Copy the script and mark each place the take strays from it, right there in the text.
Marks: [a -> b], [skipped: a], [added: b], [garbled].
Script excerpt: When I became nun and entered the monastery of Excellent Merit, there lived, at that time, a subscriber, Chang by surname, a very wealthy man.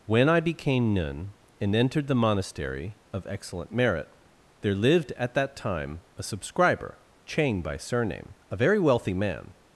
When I became nun and entered the monastery of Excellent Merit, there lived, at that time, a subscriber, Chang by surname, a very wealthy man.